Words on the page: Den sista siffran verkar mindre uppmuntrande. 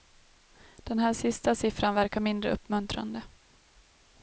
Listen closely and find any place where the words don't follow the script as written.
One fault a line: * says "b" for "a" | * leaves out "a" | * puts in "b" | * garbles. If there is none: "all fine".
* puts in "här"